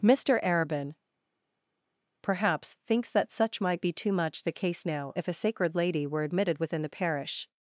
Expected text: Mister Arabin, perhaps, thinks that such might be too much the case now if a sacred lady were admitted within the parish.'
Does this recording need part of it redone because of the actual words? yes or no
no